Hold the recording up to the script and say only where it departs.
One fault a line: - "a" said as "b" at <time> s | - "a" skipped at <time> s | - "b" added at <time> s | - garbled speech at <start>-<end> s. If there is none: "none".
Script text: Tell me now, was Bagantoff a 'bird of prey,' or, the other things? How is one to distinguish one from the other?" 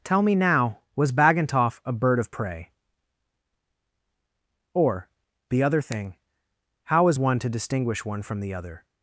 - "things" said as "thing" at 5.8 s